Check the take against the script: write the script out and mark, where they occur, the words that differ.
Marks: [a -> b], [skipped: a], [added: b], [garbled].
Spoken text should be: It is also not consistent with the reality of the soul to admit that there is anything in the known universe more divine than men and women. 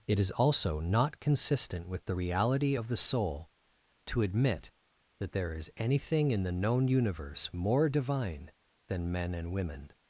It is also not consistent with the reality of the soul to admit that there is anything in the known universe more divine than men and women.